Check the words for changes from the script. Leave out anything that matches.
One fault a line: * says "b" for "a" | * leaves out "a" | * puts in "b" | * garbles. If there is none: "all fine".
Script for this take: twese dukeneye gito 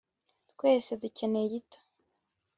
all fine